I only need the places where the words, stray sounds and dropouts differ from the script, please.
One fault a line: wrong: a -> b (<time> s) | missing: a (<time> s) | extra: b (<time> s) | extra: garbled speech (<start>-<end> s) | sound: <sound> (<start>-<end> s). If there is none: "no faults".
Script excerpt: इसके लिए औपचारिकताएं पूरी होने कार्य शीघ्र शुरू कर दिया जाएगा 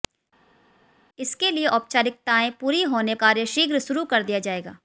no faults